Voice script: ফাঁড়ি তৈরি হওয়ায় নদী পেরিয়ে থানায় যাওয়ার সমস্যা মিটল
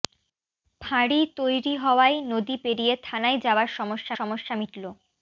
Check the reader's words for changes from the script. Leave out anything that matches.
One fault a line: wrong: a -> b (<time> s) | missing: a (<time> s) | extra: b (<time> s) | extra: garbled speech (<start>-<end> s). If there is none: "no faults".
extra: সমস্যা (4.2 s)